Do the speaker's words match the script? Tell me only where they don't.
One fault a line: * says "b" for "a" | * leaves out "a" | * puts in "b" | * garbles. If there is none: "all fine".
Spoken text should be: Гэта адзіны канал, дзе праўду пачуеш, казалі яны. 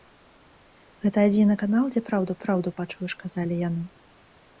* puts in "праўду"